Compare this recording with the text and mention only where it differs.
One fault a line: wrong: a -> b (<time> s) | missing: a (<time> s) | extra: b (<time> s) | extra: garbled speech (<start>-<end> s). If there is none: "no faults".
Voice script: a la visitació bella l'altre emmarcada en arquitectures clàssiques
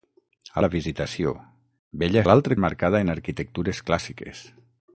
no faults